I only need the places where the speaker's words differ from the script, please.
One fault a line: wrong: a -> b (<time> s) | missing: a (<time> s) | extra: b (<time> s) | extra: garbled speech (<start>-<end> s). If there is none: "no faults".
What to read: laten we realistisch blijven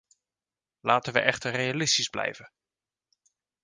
extra: echter (1.2 s)